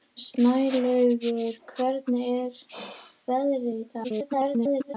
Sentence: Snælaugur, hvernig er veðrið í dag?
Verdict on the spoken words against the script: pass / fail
fail